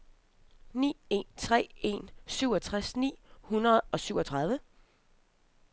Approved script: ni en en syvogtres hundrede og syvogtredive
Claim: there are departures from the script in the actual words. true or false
true